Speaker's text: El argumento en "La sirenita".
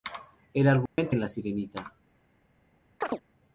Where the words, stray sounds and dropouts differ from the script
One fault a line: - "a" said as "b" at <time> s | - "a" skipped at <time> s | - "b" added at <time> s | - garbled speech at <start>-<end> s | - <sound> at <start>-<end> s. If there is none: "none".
- dropout at 0.9-1.0 s
- chirp at 3.0-3.2 s